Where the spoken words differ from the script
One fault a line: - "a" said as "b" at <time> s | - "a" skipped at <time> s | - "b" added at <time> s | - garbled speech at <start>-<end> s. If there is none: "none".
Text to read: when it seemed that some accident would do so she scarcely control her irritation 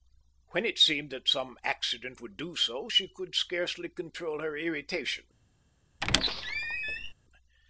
- "could" added at 3.1 s